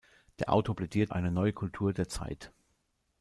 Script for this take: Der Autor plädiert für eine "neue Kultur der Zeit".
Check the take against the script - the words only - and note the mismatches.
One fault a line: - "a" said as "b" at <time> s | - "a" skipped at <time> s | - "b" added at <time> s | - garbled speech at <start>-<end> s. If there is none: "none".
- "für" skipped at 1.1 s